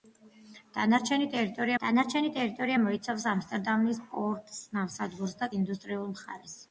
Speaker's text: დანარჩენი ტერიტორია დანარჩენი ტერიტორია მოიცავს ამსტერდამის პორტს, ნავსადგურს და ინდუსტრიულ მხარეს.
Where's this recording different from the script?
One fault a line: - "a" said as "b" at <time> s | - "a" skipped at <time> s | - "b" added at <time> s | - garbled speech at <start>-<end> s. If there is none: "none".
none